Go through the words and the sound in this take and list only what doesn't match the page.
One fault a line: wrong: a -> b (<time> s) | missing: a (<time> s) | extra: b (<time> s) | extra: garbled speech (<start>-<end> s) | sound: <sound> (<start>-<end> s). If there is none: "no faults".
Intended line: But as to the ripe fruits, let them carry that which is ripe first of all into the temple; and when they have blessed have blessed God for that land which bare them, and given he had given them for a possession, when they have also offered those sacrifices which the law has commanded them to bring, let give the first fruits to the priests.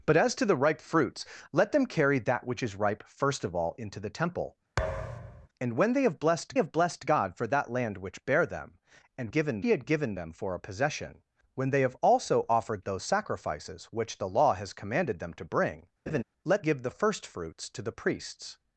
sound: thud (4.8-5.5 s)
sound: laugh (16.1-16.2 s)